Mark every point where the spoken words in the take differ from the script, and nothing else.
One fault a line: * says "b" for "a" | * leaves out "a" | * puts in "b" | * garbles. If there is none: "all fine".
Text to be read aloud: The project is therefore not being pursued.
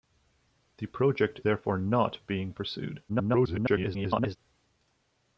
* leaves out "is"
* garbles